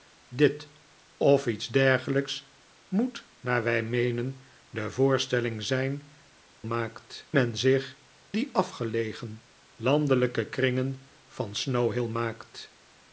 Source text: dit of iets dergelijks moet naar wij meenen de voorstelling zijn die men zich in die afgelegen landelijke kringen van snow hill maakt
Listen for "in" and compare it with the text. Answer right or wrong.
wrong